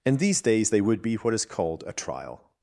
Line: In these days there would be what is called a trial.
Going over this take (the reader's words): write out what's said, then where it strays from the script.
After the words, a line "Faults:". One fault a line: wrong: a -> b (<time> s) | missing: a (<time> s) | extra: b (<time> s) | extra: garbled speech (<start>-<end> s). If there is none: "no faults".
In these days they would be what is called a trial.
Faults:
wrong: there -> they (0.7 s)